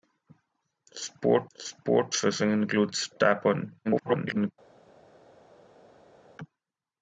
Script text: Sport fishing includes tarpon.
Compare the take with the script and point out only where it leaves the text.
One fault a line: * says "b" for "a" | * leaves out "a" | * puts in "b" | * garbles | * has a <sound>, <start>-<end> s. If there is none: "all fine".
* puts in "sport"
* garbles